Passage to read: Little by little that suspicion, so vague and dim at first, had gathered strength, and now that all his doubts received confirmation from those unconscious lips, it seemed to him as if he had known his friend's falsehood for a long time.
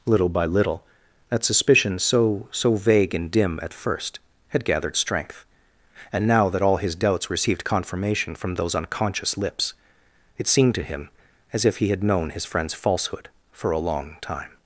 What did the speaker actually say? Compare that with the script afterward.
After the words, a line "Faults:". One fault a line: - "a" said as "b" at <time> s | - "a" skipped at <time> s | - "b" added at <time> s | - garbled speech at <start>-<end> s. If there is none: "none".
Little by little that suspicion, so so vague and dim at first, had gathered strength, and now that all his doubts received confirmation from those unconscious lips, it seemed to him as if he had known his friend's falsehood for a long time.
Faults:
- "so" added at 2.5 s